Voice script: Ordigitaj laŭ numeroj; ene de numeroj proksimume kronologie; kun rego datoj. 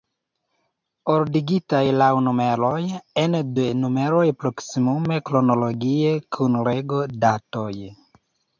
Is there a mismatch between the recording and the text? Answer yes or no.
no